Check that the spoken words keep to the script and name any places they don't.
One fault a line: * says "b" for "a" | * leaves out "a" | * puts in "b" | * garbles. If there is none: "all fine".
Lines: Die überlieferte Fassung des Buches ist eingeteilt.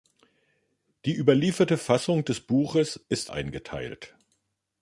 all fine